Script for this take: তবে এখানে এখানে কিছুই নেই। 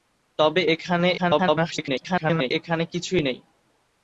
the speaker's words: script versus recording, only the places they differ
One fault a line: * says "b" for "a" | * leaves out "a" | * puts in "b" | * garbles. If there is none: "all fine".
* garbles